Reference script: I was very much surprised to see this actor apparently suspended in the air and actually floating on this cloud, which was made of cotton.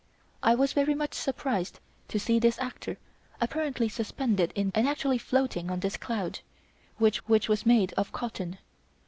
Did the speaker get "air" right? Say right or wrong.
wrong